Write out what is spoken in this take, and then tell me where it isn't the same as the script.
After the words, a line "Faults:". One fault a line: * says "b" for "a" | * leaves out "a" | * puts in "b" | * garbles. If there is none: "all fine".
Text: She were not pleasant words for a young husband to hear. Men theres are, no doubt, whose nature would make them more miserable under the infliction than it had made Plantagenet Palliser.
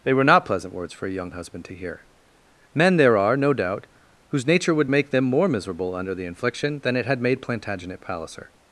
They were not pleasant words for a young husband to hear. Men there are, no doubt, whose nature would make them more miserable under the infliction than it had made Plantagenet Palliser.
Faults:
* says "They" for "She"
* says "there" for "theres"